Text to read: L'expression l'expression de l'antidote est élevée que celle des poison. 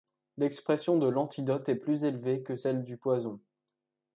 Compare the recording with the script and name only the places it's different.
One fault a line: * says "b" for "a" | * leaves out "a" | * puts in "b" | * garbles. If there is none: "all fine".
* leaves out "l'expression"
* puts in "plus"
* says "du" for "des"